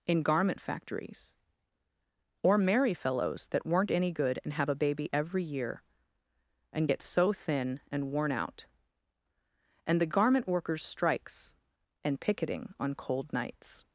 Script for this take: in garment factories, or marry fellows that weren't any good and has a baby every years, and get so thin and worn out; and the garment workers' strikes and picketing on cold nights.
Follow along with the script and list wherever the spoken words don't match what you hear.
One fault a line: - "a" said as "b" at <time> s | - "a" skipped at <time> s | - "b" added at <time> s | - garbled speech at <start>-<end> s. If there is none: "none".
- "has" said as "have" at 4.5 s
- "years" said as "year" at 5.4 s